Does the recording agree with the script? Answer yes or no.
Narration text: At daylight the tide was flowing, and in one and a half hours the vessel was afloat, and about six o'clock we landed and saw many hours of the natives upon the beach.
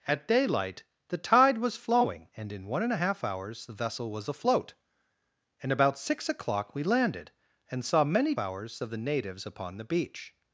yes